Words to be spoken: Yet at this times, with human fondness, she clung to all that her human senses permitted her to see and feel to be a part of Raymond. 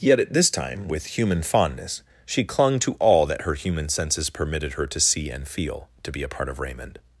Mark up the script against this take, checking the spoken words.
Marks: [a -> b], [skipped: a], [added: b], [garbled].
Yet at this [times, -> time] with human fondness, she clung to all that her human senses permitted her to see and feel to be a part of Raymond.